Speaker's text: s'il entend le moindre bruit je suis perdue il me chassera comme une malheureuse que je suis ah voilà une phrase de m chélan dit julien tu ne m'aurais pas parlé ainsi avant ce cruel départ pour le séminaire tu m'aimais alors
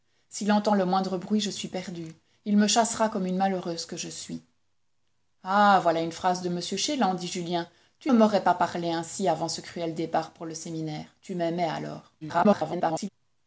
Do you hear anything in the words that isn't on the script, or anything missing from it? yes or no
yes